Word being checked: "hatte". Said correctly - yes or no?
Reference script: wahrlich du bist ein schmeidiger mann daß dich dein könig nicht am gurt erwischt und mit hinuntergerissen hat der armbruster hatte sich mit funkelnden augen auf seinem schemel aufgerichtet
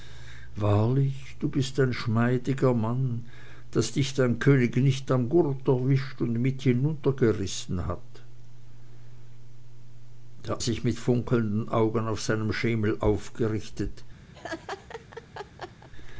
no